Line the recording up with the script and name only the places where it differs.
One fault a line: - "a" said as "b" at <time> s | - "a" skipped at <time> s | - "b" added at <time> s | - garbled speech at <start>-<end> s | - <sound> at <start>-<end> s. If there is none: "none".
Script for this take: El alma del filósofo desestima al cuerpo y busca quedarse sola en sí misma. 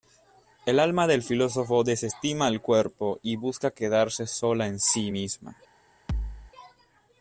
- thud at 6.1-6.5 s